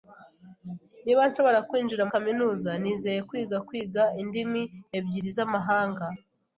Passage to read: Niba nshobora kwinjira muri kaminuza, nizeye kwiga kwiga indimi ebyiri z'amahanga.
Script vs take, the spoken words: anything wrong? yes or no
yes